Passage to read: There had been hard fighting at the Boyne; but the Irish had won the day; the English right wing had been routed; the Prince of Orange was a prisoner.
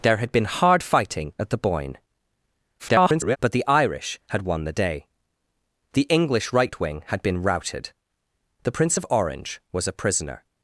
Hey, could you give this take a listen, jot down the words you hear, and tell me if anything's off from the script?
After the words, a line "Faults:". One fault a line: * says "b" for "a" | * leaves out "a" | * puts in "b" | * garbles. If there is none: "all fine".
There had been hard fighting at the Boyne; [garbled] but the Irish had won the day; the English right wing had been routed; the Prince of Orange was a prisoner.
Faults:
* garbles